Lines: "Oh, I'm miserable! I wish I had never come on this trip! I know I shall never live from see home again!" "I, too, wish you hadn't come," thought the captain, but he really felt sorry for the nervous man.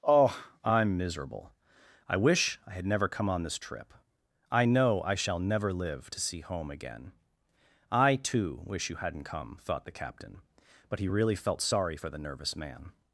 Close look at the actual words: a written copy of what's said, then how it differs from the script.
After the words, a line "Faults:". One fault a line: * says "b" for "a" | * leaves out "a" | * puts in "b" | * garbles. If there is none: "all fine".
"Oh, I'm miserable! I wish I had never come on this trip! I know I shall never live to see home again!" "I, too, wish you hadn't come," thought the captain, but he really felt sorry for the nervous man.
Faults:
* says "to" for "from"